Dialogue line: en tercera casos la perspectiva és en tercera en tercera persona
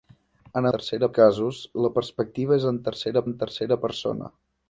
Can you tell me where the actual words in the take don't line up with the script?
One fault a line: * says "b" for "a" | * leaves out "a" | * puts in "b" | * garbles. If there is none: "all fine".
all fine